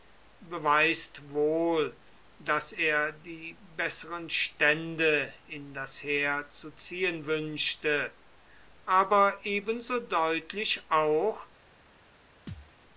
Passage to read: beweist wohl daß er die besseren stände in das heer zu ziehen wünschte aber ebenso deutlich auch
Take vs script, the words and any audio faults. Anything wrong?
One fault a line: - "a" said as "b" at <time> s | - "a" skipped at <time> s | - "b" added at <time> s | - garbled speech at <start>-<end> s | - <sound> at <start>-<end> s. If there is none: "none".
- thud at 12.5-12.7 s